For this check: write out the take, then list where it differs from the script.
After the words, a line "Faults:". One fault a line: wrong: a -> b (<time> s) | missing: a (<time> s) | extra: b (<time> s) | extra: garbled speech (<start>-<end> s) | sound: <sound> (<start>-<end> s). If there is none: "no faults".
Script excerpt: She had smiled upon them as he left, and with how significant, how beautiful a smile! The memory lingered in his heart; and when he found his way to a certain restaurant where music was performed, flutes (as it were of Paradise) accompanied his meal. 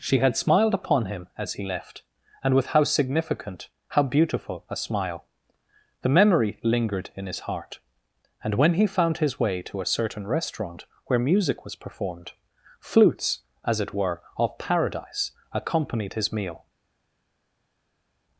She had smiled upon him as he left, and with how significant, how beautiful a smile! The memory lingered in his heart; and when he found his way to a certain restaurant where music was performed, flutes (as it were of Paradise) accompanied his meal.
Faults:
wrong: them -> him (1.1 s)